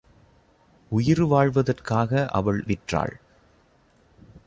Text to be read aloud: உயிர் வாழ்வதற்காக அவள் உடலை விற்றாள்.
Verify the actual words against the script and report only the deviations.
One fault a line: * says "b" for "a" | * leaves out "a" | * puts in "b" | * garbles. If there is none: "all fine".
* leaves out "உடலை"